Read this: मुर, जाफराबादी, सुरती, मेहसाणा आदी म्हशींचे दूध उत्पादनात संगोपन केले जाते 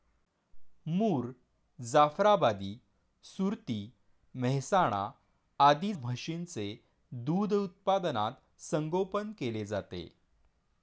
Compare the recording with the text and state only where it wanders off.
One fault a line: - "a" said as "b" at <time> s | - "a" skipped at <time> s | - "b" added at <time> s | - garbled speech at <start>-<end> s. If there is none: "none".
none